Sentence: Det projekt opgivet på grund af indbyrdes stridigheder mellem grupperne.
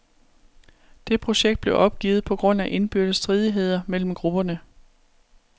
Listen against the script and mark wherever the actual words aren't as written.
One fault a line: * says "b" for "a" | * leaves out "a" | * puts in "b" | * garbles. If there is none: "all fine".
* puts in "blev"